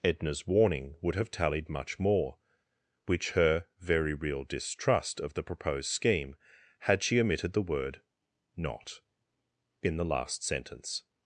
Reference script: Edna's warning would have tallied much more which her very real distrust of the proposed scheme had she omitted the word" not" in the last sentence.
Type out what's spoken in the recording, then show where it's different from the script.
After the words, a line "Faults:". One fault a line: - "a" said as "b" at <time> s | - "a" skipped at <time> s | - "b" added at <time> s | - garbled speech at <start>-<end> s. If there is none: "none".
Edna's warning would have tallied much more which her very real distrust of the proposed scheme had she omitted the word" not" in the last sentence.
Faults:
none